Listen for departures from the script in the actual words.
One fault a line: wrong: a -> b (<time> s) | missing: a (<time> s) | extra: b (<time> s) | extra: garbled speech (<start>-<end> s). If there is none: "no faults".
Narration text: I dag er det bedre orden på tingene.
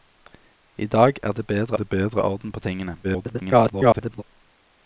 extra: det bedre (1.7 s)
extra: garbled speech (3.0-4.2 s)